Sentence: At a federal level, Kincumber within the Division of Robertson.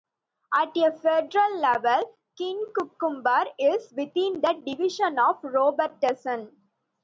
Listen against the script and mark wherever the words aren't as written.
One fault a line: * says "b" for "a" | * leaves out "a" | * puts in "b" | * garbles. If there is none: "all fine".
* puts in "is"